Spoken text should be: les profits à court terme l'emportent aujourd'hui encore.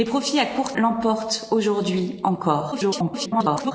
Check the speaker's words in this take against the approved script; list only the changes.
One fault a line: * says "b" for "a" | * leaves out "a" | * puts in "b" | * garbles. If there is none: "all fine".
* leaves out "terme"
* garbles